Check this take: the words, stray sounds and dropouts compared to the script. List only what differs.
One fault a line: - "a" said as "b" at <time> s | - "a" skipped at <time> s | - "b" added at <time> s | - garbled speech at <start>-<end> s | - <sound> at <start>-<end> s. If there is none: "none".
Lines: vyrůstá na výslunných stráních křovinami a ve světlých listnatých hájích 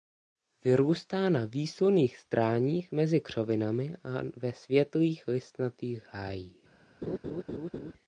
- "mezi" added at 2.9 s
- laugh at 7.0-7.9 s